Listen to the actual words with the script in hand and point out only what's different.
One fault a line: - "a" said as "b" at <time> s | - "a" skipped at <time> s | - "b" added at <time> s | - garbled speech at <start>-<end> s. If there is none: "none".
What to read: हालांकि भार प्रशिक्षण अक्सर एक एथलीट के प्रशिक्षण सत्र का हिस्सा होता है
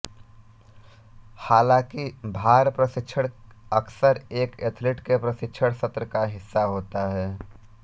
none